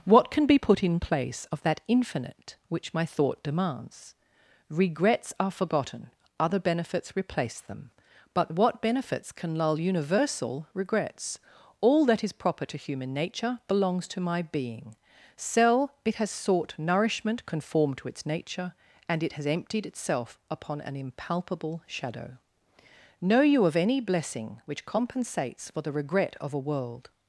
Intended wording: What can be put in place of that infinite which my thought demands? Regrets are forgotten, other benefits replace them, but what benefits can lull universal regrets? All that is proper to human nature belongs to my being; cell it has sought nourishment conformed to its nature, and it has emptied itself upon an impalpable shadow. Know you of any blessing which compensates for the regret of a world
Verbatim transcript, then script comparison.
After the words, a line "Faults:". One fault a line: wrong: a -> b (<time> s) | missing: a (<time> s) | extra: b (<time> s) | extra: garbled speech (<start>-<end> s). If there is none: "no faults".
What can be put in place of that infinite which my thought demands? Regrets are forgotten, other benefits replace them, but what benefits can lull universal regrets? All that is proper to human nature belongs to my being; cell it has sought nourishment conformed to its nature, and it has emptied itself upon an impalpable shadow. Know you of any blessing which compensates for the regret of a world
Faults:
no faults